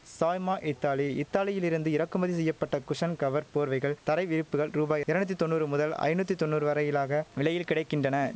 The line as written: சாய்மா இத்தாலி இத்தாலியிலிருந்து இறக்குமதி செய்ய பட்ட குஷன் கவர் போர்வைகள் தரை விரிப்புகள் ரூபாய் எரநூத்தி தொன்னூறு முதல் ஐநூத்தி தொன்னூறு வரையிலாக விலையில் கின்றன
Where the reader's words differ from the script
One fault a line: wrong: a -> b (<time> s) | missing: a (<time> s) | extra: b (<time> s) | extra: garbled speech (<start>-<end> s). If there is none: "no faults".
extra: கிடை (7.7 s)